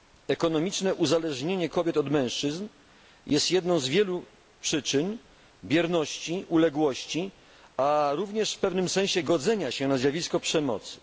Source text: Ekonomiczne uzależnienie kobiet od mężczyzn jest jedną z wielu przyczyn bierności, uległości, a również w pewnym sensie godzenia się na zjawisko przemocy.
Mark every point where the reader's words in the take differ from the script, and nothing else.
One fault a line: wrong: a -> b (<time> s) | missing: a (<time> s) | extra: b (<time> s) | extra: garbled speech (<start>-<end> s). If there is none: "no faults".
no faults